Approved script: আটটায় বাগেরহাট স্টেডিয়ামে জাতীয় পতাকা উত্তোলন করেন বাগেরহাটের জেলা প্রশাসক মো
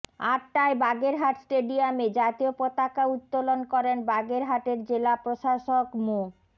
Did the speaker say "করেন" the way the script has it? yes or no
yes